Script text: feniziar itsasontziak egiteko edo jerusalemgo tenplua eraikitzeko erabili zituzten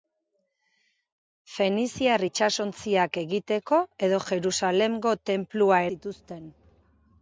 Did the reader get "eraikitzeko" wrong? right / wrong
wrong